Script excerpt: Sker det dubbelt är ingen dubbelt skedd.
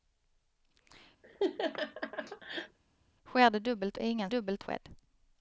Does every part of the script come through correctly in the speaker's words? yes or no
yes